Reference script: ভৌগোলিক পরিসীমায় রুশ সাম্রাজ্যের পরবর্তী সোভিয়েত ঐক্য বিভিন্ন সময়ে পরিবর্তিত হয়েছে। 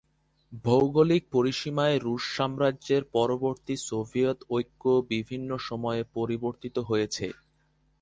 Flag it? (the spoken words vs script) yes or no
no